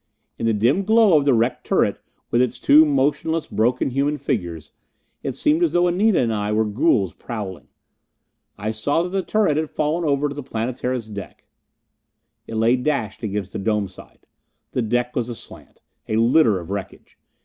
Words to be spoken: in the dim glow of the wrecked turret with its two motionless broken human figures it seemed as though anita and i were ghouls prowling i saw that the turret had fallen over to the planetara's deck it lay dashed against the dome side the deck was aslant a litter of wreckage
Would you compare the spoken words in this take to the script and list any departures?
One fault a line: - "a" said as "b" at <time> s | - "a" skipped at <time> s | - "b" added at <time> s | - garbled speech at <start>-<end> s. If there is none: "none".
none